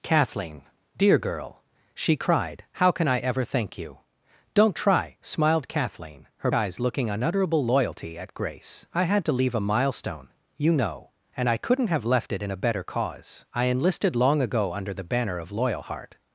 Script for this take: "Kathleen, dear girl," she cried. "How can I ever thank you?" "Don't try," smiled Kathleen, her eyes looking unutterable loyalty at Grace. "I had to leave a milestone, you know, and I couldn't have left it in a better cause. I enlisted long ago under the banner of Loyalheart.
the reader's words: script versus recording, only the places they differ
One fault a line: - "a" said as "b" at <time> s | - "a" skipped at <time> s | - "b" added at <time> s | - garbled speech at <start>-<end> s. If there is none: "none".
none